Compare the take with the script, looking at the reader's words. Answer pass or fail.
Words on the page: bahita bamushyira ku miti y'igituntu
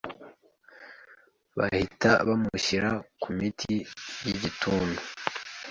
pass